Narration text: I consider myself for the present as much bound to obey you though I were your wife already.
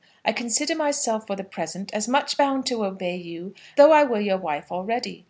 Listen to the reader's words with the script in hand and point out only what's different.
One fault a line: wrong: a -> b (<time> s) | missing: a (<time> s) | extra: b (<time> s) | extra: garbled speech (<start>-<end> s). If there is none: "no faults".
no faults